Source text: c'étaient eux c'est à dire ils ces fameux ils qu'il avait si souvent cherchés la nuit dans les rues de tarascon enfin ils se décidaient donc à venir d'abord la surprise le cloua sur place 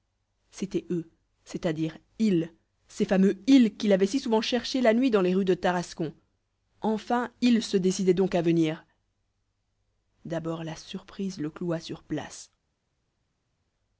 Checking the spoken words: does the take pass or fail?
pass